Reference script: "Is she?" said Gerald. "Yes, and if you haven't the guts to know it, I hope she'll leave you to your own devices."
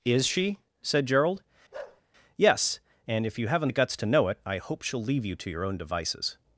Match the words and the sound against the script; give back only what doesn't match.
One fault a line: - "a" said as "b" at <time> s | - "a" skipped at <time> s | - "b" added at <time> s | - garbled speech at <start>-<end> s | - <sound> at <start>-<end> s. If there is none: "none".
- bark at 1.7-2.0 s